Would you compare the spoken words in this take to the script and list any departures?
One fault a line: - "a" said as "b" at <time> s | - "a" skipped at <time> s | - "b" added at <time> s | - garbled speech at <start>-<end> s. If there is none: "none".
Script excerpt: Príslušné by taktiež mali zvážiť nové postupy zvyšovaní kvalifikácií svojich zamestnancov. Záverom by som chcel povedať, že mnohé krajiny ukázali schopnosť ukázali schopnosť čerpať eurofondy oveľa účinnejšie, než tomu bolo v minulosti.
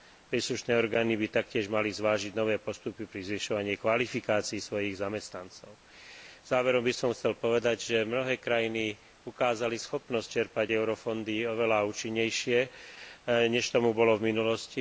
- "orgány" added at 0.7 s
- "pri" added at 3.0 s
- "ukázali schopnosť" skipped at 10.3 s